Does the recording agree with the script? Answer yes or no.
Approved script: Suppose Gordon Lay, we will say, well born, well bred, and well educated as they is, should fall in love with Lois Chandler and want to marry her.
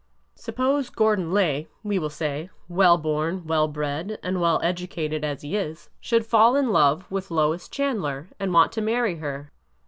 no